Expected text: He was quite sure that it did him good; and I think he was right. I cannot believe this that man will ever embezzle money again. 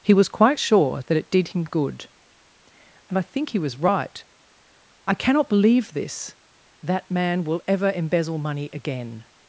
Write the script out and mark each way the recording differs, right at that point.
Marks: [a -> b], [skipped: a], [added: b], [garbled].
He was quite sure that it did him good; and I think he was right. I cannot believe this that man will ever embezzle money again.